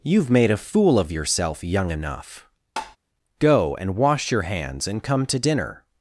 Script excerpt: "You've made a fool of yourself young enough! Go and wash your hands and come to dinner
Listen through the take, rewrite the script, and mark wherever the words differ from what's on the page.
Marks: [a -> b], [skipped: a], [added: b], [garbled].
"You've made a fool of yourself young enough! Go and wash your hands and come to dinner